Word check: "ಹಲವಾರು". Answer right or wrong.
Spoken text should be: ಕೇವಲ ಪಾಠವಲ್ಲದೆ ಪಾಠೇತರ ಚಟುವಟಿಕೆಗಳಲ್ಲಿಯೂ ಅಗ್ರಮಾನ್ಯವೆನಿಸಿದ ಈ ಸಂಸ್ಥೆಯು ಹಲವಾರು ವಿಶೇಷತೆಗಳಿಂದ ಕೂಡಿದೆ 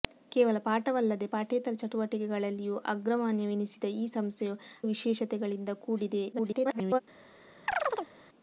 wrong